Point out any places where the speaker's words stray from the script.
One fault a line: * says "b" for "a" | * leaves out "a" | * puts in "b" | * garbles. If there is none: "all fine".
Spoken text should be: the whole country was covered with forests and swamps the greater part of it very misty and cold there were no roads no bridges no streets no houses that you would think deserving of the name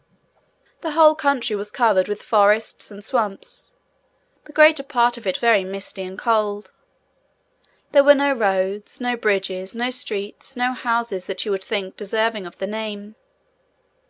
all fine